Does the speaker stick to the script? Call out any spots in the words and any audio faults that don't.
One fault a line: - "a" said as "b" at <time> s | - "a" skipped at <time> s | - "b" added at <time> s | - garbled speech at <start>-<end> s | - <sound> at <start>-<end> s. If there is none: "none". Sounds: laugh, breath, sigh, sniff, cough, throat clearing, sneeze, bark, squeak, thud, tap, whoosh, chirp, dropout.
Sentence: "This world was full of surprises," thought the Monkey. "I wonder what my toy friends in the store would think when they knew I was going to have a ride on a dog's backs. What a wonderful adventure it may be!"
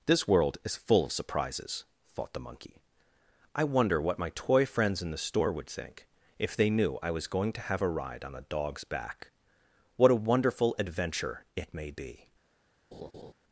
- "was" said as "is" at 0.6 s
- "when" said as "if" at 6.4 s
- "backs" said as "back" at 8.9 s
- laugh at 12.9-13.3 s